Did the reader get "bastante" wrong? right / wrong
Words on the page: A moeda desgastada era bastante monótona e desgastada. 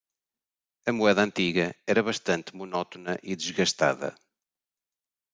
right